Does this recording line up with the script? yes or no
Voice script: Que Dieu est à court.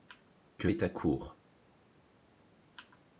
no